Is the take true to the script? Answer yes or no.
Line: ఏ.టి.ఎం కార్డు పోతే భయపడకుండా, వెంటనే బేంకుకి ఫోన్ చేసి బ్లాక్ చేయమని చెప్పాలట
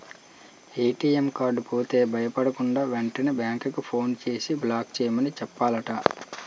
yes